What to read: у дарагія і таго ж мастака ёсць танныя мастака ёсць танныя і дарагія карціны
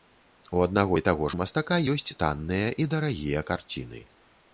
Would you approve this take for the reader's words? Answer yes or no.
no